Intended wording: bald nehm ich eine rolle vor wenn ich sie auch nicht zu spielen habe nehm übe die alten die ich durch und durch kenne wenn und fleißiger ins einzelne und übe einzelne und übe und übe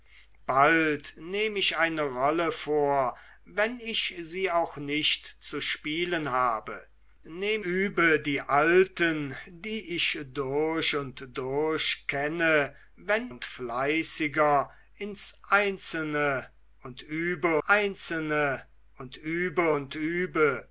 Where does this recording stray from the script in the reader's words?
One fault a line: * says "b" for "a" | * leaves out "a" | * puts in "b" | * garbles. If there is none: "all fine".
all fine